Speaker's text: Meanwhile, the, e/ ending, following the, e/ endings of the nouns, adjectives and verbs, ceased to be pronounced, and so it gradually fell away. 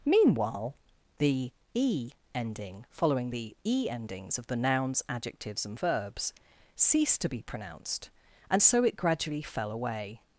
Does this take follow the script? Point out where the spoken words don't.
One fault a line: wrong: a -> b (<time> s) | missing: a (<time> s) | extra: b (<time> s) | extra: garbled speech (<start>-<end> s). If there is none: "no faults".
no faults